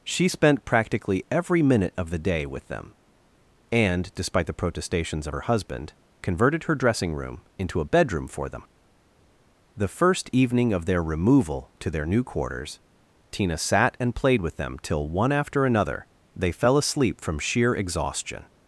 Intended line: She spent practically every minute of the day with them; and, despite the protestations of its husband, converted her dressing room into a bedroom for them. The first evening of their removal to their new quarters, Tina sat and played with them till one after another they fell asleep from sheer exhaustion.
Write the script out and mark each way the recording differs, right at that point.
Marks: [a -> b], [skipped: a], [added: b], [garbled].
She spent practically every minute of the day with them; and, despite the protestations of [its -> her] husband, converted her dressing room into a bedroom for them. The first evening of their removal to their new quarters, Tina sat and played with them till one after another they fell asleep from sheer exhaustion.